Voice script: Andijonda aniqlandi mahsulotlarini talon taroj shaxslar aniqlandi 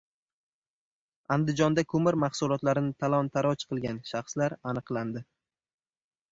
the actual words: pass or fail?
fail